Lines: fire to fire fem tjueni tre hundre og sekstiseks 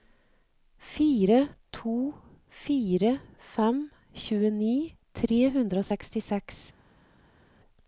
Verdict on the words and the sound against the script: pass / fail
pass